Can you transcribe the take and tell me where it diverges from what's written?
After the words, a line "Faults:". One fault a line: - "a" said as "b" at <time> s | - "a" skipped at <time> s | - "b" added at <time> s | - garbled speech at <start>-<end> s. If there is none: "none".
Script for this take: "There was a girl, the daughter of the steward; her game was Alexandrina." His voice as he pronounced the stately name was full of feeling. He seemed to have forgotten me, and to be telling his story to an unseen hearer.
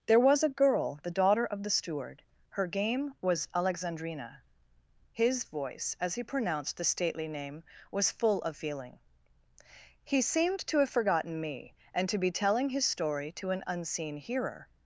"There was a girl, the daughter of the steward; her game was Alexandrina." His voice as he pronounced the stately name was full of feeling. He seemed to have forgotten me, and to be telling his story to an unseen hearer.
Faults:
none